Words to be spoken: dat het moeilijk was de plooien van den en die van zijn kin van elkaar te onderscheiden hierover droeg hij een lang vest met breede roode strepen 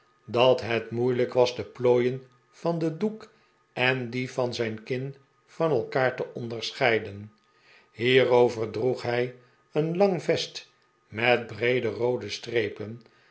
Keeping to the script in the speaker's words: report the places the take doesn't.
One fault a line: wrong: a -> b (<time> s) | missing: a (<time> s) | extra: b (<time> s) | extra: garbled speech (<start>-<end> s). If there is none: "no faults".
extra: doek (3.0 s)